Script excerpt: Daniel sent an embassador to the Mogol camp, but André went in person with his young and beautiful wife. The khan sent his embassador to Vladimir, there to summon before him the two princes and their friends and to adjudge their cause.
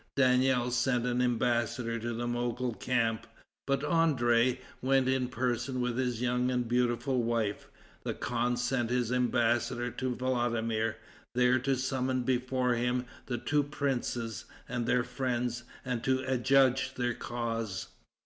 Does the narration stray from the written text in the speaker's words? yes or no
no